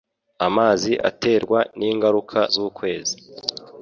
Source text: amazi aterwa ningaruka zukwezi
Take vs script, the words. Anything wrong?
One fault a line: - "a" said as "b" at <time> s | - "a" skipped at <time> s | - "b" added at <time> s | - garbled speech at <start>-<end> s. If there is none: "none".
none